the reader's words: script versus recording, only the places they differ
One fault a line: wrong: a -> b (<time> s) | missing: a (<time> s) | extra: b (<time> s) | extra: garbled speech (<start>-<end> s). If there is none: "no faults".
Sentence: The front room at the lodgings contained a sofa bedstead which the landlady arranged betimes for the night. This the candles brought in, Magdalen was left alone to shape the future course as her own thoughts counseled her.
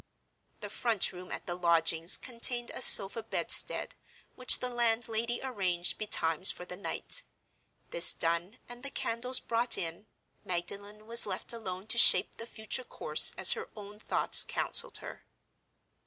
extra: done and (8.1 s)